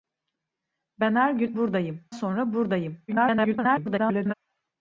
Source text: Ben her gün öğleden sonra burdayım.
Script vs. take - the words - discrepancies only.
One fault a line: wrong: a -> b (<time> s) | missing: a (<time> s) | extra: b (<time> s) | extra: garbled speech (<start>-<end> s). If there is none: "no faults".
wrong: öğleden -> burdayım (1.6 s)
extra: garbled speech (3.1-4.3 s)